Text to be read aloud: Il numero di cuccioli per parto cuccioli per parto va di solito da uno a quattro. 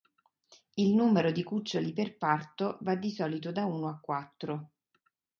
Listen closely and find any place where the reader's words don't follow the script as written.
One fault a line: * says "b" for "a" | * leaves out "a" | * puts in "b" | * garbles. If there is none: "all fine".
* leaves out "cuccioli per parto"